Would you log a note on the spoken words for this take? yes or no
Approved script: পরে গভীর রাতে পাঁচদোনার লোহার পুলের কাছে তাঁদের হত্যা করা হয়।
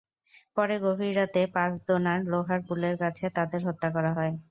no